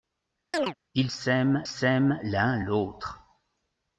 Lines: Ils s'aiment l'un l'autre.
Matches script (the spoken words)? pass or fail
fail